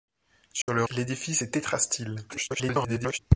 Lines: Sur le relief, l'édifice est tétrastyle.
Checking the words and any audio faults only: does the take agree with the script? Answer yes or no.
no